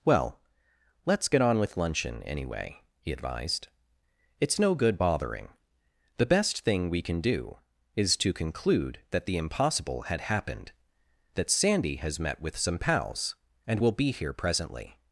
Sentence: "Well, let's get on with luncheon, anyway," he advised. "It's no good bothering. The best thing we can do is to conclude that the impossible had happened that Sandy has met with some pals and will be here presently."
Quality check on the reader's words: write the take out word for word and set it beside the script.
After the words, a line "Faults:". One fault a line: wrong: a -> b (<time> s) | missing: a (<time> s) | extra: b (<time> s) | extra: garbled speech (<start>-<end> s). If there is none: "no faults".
"Well, let's get on with luncheon, anyway," he advised. "It's no good bothering. The best thing we can do is to conclude that the impossible had happened that Sandy has met with some pals and will be here presently."
Faults:
no faults